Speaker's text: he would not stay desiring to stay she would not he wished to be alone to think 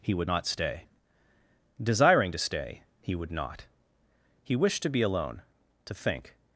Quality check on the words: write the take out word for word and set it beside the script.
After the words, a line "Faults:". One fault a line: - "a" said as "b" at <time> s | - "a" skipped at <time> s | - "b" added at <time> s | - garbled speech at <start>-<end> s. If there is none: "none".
he would not stay desiring to stay he would not he wished to be alone to think
Faults:
- "she" said as "he" at 3.0 s